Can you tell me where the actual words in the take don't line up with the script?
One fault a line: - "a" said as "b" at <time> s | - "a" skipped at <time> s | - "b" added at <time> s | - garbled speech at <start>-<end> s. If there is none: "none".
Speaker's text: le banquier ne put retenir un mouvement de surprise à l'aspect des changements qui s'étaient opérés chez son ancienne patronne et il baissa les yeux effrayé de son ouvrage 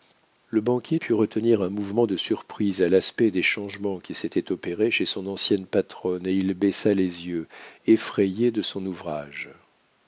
- "ne" skipped at 1.0 s